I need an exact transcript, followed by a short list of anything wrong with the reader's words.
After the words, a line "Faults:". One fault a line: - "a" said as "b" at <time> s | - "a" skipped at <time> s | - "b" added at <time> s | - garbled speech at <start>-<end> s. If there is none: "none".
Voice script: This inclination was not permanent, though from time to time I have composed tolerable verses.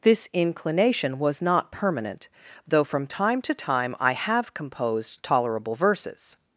This inclination was not permanent, though from time to time I have composed tolerable verses.
Faults:
none